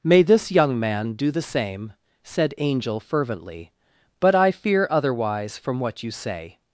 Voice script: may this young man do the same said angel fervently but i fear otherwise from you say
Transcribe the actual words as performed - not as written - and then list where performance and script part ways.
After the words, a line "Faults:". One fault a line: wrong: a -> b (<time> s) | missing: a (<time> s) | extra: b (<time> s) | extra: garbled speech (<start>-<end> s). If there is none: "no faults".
may this young man do the same said angel fervently but i fear otherwise from what you say
Faults:
extra: what (5.8 s)